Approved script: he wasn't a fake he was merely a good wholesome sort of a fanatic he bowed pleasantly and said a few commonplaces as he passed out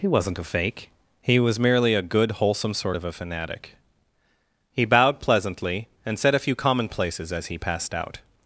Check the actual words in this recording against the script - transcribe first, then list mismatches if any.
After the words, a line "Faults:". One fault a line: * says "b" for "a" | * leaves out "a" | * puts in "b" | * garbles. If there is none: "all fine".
he wasn't a fake he was merely a good wholesome sort of a fanatic he bowed pleasantly and said a few commonplaces as he passed out
Faults:
all fine